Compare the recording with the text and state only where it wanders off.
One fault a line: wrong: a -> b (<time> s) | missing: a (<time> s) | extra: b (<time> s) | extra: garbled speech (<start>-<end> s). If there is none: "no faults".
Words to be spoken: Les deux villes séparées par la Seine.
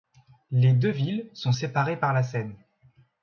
extra: sont (1.3 s)